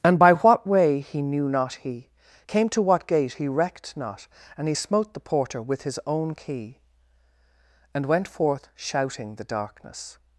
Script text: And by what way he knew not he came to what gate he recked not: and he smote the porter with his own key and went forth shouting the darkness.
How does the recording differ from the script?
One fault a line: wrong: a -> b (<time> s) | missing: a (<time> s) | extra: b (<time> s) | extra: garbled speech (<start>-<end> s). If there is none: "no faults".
no faults